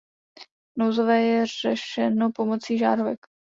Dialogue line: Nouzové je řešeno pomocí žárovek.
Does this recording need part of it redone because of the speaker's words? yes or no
no